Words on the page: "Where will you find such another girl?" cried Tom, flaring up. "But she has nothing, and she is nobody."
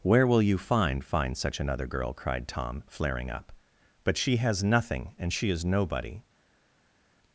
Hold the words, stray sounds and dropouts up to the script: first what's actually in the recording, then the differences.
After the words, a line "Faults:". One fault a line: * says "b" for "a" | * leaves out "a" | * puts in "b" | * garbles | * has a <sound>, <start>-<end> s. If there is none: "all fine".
"Where will you find find such another girl?" cried Tom, flaring up. "But she has nothing, and she is nobody."
Faults:
* puts in "find"